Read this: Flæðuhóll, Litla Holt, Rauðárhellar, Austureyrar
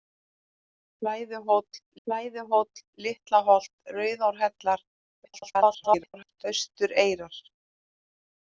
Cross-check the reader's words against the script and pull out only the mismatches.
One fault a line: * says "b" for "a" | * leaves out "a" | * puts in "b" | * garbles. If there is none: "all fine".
* puts in "flæðuhóll"
* garbles